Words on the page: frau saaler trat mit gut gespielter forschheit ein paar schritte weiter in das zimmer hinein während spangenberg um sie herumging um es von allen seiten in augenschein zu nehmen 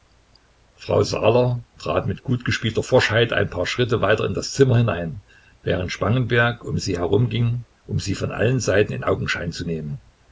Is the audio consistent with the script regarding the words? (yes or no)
no